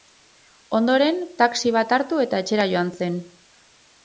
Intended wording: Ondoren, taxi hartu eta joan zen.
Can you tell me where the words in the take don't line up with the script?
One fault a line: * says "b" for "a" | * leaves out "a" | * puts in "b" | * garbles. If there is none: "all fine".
* puts in "bat"
* puts in "etxera"